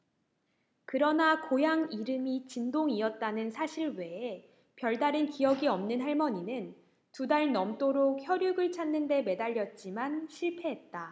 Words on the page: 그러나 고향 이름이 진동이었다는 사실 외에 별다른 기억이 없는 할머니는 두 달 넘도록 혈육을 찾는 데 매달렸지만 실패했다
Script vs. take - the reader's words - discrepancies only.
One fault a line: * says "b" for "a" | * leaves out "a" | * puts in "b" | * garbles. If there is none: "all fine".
all fine